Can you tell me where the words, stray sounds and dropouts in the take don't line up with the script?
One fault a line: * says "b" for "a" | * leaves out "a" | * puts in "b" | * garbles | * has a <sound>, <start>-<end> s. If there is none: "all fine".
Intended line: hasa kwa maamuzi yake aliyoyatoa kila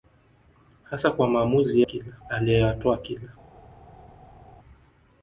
* says "kila" for "yake"